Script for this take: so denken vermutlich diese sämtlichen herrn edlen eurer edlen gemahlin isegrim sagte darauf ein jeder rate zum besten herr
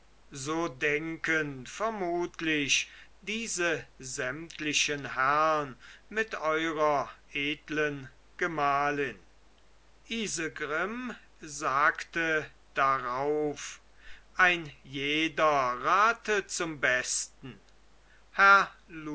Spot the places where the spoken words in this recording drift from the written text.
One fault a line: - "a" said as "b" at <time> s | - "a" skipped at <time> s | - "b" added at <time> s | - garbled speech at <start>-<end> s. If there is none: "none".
- "edlen" said as "mit" at 6.1 s